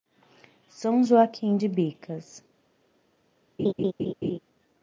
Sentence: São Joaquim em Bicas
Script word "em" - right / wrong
wrong